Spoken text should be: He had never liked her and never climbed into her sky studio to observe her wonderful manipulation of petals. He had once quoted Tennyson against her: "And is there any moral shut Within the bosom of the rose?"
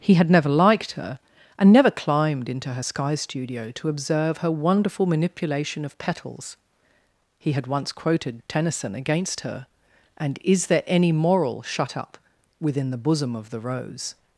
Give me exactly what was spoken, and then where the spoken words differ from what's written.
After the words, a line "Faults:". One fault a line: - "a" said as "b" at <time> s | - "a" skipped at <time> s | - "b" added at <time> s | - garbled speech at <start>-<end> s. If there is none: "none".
He had never liked her and never climbed into her sky studio to observe her wonderful manipulation of petals. He had once quoted Tennyson against her: "And is there any moral shut up Within the bosom of the rose?"
Faults:
- "up" added at 12.0 s